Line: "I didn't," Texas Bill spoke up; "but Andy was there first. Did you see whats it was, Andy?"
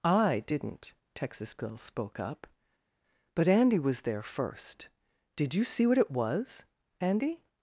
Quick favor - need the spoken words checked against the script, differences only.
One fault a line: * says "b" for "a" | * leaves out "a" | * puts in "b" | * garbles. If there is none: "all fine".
* says "what" for "whats"